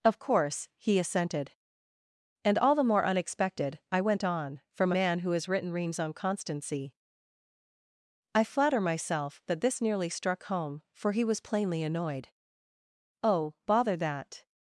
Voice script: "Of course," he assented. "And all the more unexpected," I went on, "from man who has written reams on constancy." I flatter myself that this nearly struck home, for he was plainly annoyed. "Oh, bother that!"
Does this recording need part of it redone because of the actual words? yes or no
no